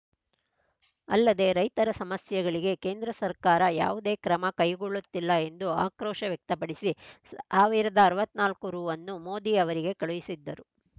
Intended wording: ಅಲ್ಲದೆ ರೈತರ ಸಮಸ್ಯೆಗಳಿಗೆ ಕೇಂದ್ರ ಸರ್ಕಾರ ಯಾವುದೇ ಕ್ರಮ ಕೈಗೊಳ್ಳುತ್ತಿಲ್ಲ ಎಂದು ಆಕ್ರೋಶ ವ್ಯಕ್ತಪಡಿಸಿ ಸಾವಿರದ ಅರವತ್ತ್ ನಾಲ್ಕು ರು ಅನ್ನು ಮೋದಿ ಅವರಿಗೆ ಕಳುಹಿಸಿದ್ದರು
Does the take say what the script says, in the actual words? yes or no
yes